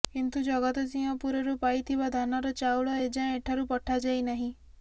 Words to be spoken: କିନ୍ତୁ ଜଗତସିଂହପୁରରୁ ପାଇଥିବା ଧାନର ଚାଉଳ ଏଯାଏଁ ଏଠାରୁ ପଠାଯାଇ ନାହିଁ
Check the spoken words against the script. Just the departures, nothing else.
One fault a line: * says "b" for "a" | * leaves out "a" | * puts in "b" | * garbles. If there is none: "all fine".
all fine